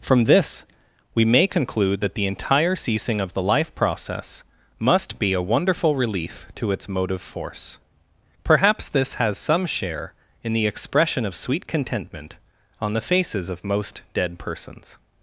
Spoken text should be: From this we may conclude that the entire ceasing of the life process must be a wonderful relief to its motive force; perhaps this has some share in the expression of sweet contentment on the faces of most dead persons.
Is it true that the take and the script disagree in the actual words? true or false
false